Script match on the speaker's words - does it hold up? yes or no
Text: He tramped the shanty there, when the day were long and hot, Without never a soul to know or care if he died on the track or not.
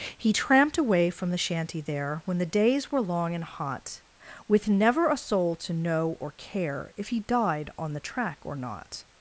no